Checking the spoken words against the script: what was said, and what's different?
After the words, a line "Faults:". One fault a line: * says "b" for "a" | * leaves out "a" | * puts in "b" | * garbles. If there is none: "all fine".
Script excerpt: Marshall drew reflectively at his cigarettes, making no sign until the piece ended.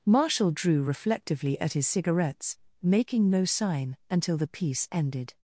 Marshall drew reflectively at his cigarettes, making no sign until the piece ended.
Faults:
all fine